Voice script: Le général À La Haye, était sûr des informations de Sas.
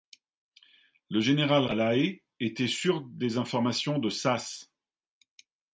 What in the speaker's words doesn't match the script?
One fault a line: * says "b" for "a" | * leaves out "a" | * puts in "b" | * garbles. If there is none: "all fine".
all fine